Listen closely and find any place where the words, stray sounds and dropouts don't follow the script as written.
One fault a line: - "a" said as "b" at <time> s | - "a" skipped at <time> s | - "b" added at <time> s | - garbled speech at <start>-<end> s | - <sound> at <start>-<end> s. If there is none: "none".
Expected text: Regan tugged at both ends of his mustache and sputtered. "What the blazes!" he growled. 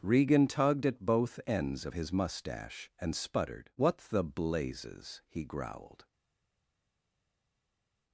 none